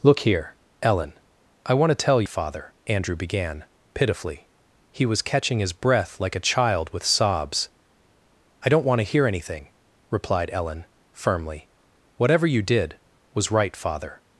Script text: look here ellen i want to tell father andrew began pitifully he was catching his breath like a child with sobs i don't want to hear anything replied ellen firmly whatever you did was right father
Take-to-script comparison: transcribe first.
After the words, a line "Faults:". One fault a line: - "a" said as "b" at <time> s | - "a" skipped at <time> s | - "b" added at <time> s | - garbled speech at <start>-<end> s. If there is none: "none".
look here ellen i want to tell father andrew began pitifully he was catching his breath like a child with sobs i don't want to hear anything replied ellen firmly whatever you did was right father
Faults:
none